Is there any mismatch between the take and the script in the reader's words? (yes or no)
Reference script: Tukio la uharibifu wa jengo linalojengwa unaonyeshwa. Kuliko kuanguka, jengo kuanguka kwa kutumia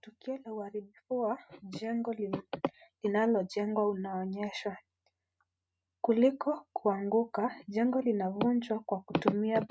yes